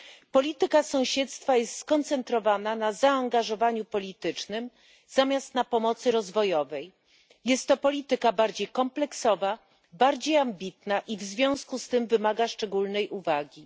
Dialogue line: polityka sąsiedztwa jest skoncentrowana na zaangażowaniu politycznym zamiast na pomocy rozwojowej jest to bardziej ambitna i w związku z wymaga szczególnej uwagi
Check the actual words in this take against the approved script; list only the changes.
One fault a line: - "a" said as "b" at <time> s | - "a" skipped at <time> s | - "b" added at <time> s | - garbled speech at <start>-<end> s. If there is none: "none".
- "polityka" added at 7.8 s
- "kompleksowa bardziej" added at 8.7 s
- "tym" added at 11.9 s